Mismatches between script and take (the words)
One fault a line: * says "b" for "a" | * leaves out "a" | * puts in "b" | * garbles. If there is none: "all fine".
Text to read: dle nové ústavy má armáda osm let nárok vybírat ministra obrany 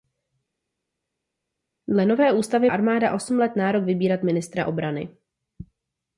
* leaves out "má"